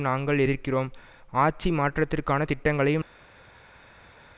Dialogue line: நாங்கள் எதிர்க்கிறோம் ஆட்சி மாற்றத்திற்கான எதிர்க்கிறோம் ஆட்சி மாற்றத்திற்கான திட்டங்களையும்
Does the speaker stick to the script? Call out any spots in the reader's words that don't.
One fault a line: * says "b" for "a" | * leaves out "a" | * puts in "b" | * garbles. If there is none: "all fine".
* leaves out "எதிர்க்கிறோம் ஆட்சி மாற்றத்திற்கான"